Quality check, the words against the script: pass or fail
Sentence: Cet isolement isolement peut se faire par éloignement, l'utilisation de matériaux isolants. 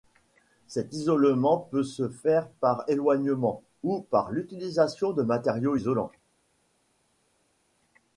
fail